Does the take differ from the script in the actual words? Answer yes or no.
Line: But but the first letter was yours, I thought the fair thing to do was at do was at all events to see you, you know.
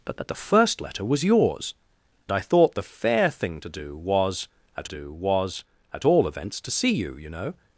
no